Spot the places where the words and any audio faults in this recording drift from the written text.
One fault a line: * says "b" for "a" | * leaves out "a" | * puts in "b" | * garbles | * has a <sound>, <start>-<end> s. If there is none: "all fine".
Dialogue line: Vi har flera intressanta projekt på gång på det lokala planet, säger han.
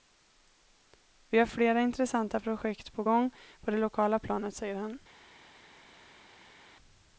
all fine